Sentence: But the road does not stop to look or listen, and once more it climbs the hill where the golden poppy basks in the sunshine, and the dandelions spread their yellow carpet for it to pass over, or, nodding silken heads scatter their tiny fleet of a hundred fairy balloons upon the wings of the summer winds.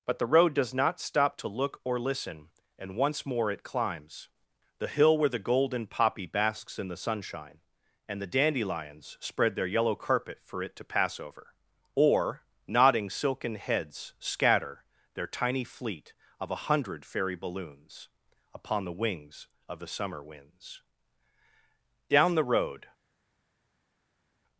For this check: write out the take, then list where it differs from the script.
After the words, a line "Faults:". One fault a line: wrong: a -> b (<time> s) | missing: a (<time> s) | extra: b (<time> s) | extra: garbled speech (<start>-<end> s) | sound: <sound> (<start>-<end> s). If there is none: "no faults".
But the road does not stop to look or listen, and once more it climbs the hill where the golden poppy basks in the sunshine, and the dandelions spread their yellow carpet for it to pass over, or, nodding silken heads scatter their tiny fleet of a hundred fairy balloons upon the wings of the summer winds. Down the road
Faults:
extra: Down the road (22.1 s)